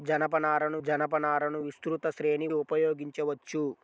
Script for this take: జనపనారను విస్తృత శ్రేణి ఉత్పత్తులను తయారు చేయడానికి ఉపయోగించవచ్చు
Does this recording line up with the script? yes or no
no